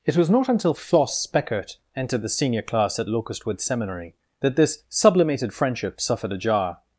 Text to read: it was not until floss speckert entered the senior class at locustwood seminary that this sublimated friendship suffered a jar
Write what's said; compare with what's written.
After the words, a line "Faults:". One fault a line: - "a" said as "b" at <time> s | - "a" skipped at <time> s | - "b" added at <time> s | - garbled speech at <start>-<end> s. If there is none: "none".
it was not until floss speckert entered the senior class at locustwood seminary that this sublimated friendship suffered a jar
Faults:
none